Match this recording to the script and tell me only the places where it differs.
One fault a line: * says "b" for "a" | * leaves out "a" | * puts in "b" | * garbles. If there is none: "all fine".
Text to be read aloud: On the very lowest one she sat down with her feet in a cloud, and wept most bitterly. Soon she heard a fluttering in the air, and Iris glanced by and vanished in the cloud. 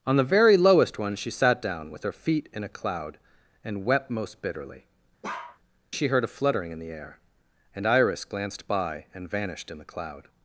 * leaves out "Soon"